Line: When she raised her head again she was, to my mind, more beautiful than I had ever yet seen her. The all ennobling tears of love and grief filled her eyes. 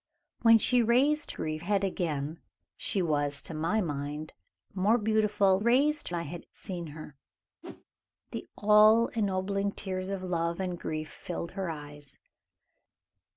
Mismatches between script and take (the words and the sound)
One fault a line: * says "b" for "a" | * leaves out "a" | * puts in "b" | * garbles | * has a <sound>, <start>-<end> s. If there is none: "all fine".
* says "grief" for "her"
* says "raised" for "than"
* leaves out "ever yet"
* has a whoosh, 7.6-7.8 s